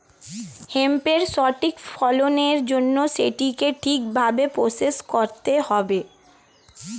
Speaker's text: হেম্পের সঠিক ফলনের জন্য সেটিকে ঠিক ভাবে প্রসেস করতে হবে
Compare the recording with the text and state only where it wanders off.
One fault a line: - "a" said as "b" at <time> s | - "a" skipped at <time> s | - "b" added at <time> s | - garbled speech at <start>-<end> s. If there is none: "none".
none